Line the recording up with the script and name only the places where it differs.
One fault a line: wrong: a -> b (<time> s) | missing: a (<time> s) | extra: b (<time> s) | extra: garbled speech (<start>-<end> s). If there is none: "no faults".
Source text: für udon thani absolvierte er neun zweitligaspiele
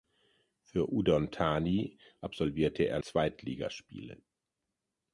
missing: neun (3.0 s)